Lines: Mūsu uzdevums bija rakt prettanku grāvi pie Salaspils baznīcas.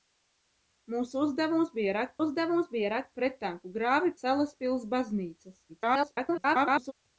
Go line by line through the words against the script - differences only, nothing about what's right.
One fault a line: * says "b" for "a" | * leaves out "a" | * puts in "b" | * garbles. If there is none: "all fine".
* puts in "uzdevums bija rakt"
* leaves out "pie"
* garbles